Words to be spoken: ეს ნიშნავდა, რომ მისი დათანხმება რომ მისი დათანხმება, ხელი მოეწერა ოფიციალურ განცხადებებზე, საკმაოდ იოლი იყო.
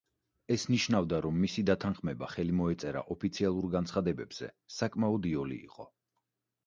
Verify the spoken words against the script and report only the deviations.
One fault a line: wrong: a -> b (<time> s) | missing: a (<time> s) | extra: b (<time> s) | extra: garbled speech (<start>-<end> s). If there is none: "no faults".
missing: რომ მისი დათანხმება (2.3 s)